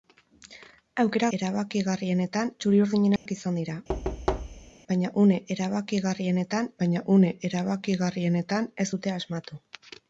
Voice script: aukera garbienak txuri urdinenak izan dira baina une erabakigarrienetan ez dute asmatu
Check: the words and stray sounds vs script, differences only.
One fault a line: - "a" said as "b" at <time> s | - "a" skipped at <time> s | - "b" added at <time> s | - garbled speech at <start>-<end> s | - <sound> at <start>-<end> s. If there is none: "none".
- "garbienak" said as "erabakigarrienetan" at 1.4 s
- dropout at 3.2-3.3 s
- thud at 3.9-4.7 s
- "baina une erabakigarrienetan" added at 6.8 s